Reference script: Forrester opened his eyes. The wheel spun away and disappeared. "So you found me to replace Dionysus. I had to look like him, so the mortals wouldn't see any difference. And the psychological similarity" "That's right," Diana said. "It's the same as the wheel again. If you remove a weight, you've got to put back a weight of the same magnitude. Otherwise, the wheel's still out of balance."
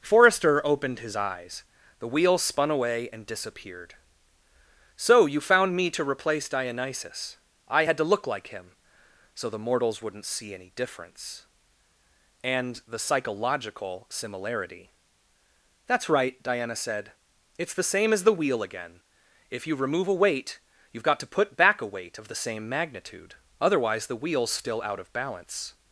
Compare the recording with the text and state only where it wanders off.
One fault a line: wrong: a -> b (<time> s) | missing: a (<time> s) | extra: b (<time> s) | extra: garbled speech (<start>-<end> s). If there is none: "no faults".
no faults